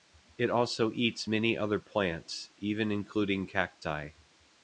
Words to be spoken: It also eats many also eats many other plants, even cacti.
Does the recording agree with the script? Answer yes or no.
no